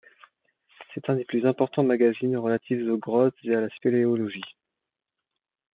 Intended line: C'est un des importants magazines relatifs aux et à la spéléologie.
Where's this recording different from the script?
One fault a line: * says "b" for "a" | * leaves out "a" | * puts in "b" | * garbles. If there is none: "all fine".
* puts in "plus"
* puts in "grottes"